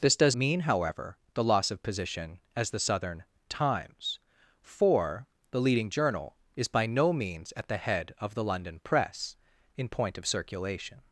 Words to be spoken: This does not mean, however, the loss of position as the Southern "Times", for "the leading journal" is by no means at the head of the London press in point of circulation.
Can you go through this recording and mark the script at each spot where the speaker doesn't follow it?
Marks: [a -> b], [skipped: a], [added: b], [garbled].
This does [skipped: not] mean, however, the loss of position as the Southern "Times", for "the leading journal" is by no means at the head of the London press in point of circulation.